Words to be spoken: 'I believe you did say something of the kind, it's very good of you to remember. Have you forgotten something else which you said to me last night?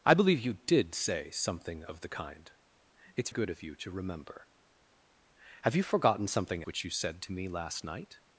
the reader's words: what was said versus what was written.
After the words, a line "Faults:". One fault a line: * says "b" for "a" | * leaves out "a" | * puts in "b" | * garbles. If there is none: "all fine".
'I believe you did say something of the kind, it's good of you to remember. Have you forgotten something which you said to me last night?
Faults:
* leaves out "very"
* leaves out "else"